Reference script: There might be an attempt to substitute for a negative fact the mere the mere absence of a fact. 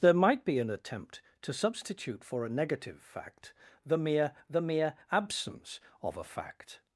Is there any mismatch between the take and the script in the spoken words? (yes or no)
no